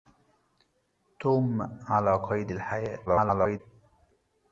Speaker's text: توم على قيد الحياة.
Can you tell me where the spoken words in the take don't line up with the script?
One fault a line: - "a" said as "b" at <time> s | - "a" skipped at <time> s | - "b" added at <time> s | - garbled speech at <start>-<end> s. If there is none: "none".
- garbled speech at 3.1-3.6 s